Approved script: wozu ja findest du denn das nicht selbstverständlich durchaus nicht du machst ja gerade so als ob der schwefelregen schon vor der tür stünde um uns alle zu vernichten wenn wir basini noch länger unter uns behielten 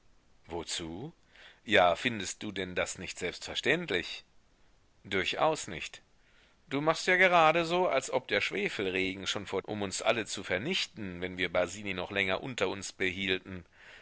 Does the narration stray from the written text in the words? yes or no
yes